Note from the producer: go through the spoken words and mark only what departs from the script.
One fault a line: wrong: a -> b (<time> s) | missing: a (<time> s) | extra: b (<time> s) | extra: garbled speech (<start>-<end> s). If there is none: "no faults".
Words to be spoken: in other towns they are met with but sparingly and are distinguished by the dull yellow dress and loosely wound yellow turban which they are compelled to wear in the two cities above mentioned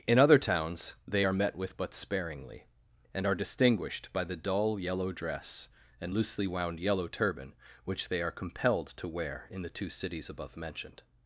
no faults